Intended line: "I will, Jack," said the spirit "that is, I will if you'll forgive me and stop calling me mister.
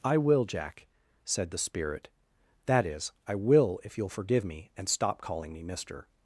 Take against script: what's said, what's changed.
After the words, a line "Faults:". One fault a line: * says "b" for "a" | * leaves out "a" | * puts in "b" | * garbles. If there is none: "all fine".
"I will, Jack," said the spirit "that is, I will if you'll forgive me and stop calling me mister.
Faults:
all fine